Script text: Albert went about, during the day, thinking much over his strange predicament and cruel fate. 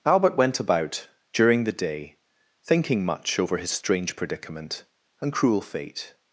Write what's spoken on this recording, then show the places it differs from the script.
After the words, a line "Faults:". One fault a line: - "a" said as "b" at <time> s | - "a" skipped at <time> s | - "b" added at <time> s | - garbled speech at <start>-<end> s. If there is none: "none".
Albert went about, during the day, thinking much over his strange predicament and cruel fate.
Faults:
none